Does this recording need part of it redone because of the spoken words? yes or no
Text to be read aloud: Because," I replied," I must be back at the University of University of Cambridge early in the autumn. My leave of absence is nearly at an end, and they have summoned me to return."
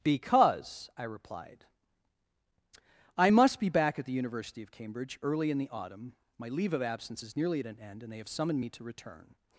yes